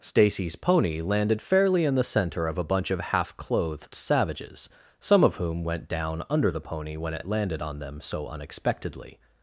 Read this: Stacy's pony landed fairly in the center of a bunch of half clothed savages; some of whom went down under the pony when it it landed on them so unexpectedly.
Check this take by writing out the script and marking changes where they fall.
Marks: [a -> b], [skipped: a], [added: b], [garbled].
Stacy's pony landed fairly in the center of a bunch of half clothed savages; some of whom went down under the pony when it it landed on them so unexpectedly.